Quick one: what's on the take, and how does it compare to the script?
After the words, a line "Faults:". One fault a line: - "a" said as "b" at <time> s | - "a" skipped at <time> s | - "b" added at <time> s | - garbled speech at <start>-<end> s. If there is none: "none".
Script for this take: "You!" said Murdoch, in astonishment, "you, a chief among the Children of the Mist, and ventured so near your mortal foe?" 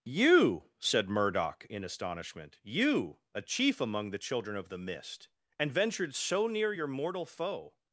"You!" said Murdoch, in astonishment, "you, a chief among the Children of the Mist, and ventured so near your mortal foe?"
Faults:
none